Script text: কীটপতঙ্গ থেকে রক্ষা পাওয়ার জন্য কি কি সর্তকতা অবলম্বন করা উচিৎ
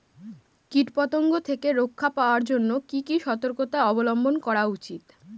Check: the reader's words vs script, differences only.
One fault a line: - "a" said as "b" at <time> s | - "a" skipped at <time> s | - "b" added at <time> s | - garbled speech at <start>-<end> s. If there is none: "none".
none